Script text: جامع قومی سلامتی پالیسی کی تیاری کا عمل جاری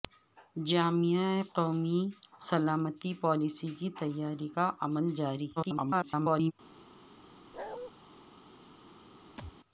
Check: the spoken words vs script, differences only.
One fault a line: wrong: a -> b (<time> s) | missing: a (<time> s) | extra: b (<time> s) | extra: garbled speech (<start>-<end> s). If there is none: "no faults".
extra: garbled speech (5.6-6.5 s)